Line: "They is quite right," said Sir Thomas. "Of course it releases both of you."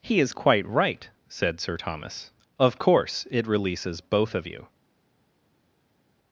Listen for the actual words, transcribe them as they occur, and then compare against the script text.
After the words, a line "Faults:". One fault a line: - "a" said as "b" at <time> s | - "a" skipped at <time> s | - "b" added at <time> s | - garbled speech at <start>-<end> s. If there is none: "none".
"He is quite right," said Sir Thomas. "Of course it releases both of you."
Faults:
- "They" said as "He" at 0.0 s